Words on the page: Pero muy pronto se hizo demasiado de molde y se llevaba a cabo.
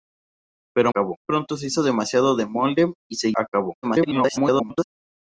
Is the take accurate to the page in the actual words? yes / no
no